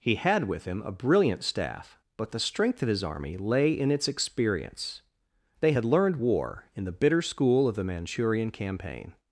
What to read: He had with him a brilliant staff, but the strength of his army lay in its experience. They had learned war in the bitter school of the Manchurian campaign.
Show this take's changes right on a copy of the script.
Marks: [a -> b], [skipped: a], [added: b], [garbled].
He had with him a brilliant staff, but the strength of his army lay in its experience. They had learned war in the bitter school of the Manchurian campaign.